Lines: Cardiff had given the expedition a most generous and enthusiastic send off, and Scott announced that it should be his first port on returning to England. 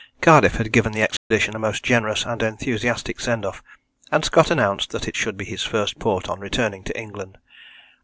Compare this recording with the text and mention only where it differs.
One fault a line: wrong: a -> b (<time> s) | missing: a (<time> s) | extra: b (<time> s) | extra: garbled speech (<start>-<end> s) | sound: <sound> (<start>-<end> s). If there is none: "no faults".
sound: dropout (1.2-1.3 s)